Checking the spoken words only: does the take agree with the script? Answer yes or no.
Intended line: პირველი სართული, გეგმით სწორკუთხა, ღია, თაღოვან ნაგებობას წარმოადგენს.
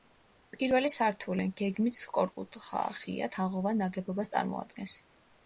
yes